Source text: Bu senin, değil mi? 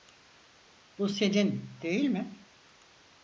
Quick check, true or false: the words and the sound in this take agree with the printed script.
true